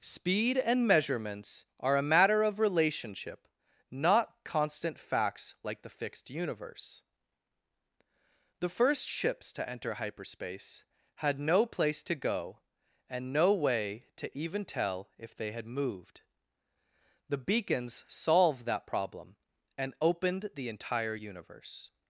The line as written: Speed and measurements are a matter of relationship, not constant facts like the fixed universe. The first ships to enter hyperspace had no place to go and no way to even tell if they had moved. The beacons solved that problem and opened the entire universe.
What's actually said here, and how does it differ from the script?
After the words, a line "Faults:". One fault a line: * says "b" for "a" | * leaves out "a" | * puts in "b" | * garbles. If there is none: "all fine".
Speed and measurements are a matter of relationship, not constant facts like the fixed universe. The first ships to enter hyperspace had no place to go and no way to even tell if they had moved. The beacons solved that problem and opened the entire universe.
Faults:
all fine